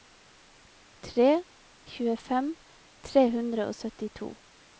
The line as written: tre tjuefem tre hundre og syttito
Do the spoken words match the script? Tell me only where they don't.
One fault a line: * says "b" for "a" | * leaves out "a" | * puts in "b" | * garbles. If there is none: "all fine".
all fine